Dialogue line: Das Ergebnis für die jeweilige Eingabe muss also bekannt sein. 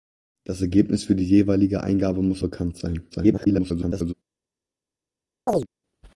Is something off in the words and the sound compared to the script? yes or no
yes